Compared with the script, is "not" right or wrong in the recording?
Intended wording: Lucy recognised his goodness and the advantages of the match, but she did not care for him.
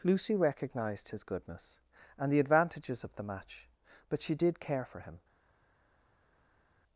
wrong